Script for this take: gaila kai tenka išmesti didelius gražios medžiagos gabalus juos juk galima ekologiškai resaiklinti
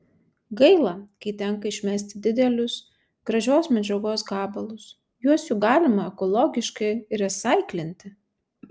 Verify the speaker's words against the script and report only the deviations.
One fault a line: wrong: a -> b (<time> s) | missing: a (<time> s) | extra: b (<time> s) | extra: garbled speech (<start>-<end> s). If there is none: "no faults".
no faults